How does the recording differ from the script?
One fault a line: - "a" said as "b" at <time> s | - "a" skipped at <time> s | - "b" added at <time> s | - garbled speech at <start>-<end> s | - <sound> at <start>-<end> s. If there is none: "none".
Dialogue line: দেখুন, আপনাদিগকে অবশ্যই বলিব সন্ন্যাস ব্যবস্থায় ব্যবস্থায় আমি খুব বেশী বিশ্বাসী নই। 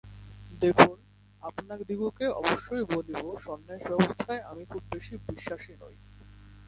- "ব্যবস্থায়" skipped at 4.4 s